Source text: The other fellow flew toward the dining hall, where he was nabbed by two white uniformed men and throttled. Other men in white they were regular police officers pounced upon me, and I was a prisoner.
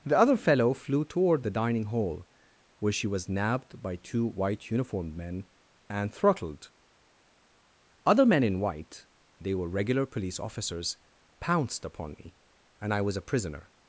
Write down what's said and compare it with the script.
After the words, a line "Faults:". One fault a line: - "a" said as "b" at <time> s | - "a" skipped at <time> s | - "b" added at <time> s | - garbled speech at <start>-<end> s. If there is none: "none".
The other fellow flew toward the dining hall, where she was nabbed by two white uniformed men and throttled. Other men in white they were regular police officers pounced upon me, and I was a prisoner.
Faults:
- "he" said as "she" at 2.9 s